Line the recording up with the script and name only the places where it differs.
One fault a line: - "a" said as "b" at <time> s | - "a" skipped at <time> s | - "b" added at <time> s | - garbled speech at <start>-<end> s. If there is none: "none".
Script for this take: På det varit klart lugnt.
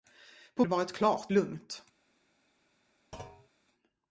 none